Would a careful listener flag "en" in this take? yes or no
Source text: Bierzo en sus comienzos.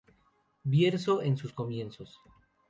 no